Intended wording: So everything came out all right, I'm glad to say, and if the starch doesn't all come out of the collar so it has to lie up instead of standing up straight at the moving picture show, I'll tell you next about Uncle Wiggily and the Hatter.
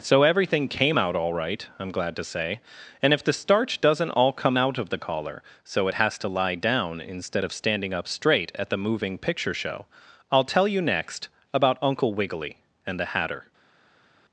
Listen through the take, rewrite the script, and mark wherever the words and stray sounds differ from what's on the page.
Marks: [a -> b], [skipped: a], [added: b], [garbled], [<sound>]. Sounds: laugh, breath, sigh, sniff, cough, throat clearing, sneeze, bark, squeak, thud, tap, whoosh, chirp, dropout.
So everything came out all right, I'm glad to say, and if the starch doesn't all come out of the collar so it has to lie [up -> down] instead of standing up straight at the moving picture show, I'll tell you next about Uncle Wiggily and the Hatter.